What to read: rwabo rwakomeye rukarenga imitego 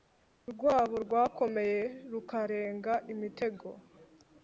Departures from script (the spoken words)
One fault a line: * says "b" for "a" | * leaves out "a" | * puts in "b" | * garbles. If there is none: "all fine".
all fine